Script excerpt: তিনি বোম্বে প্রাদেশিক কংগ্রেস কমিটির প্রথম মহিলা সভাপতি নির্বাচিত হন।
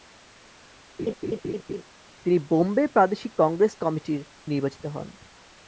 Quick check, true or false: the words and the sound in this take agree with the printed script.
false